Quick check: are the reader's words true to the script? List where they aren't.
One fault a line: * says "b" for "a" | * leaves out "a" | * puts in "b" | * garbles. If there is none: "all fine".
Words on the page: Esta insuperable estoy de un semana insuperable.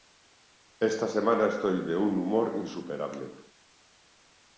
* says "semana" for "insuperable"
* says "humor" for "semana"